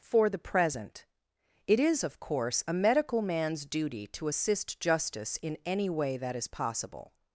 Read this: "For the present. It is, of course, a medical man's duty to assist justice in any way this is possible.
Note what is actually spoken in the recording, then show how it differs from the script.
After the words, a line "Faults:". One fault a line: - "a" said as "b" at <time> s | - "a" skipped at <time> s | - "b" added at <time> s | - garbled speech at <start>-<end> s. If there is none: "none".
"For the present. It is, of course, a medical man's duty to assist justice in any way that is possible.
Faults:
- "this" said as "that" at 6.2 s